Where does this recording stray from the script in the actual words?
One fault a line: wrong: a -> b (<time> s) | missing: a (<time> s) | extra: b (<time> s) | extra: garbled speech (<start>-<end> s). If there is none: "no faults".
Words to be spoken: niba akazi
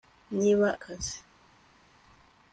no faults